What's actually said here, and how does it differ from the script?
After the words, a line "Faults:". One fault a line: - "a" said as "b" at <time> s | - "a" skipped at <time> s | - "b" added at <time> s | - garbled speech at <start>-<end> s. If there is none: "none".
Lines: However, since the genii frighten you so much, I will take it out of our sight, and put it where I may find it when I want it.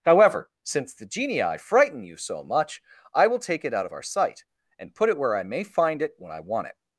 However, since the genii frighten you so much, I will take it out of our sight, and put it where I may find it when I want it.
Faults:
none